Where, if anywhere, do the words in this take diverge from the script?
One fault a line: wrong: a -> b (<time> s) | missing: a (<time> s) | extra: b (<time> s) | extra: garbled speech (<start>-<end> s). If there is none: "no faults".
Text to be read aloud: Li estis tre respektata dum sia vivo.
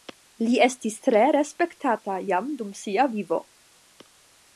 extra: jam (2.3 s)